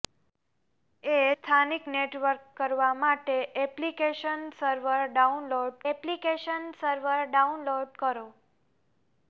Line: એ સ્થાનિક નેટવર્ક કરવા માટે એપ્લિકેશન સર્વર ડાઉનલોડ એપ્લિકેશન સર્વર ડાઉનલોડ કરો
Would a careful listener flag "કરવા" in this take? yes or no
no